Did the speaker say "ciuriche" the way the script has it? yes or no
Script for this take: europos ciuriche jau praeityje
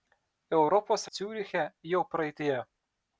yes